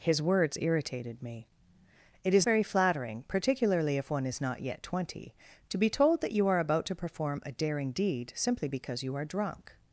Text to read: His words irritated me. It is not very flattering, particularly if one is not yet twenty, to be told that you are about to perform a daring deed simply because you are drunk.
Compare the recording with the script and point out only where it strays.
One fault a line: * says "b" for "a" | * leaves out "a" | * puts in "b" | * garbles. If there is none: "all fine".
* leaves out "not"